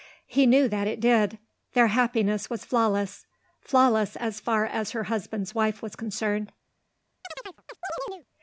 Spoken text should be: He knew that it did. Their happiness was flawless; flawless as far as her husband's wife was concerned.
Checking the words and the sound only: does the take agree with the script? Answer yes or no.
no